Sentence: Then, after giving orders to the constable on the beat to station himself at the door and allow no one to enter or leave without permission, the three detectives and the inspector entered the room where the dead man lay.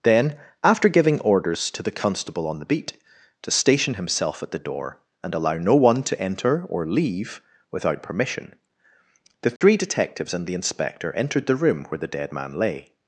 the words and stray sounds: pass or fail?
fail